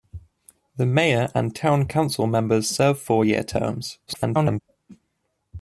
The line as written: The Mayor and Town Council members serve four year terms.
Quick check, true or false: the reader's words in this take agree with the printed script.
false